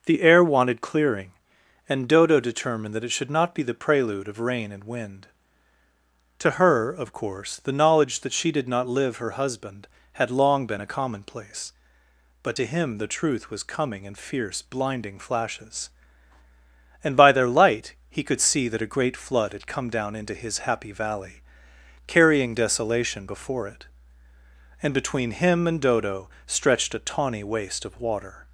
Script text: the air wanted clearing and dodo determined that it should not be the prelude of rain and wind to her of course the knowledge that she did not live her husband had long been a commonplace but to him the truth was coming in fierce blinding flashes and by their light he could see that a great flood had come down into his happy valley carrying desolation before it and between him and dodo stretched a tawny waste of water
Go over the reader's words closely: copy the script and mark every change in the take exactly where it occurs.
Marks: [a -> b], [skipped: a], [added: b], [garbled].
the air wanted clearing and dodo determined that it should not be the prelude of rain and wind to her of course the knowledge that she did not live her husband had long been a commonplace but to him the truth was coming in fierce blinding flashes and by their light he could see that a great flood had come down into his happy valley carrying desolation before it and between him and dodo stretched a tawny waste of water